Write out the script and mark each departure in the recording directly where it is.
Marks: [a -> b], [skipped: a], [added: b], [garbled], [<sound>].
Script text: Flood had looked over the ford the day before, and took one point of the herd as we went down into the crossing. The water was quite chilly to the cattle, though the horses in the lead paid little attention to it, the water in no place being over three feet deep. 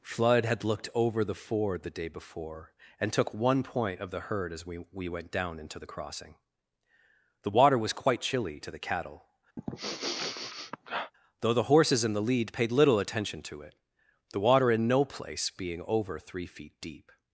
Flood had looked over the ford the day before, and took one point of the herd as we [added: we] went down into the crossing. The water was quite chilly to the cattle, [sniff] though the horses in the lead paid little attention to it, the water in no place being over three feet deep.